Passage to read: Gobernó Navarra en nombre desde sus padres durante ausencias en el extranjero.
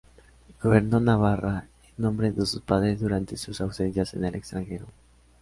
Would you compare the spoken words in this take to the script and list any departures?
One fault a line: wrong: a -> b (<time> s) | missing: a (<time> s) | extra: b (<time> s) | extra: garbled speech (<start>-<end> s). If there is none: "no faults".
wrong: desde -> de (2.3 s)
extra: sus (3.4 s)